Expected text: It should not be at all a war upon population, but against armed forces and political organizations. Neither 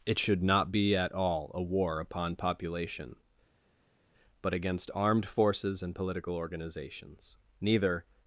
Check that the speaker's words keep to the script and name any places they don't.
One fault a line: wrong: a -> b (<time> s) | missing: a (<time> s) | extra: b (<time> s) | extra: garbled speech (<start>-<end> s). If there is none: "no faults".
no faults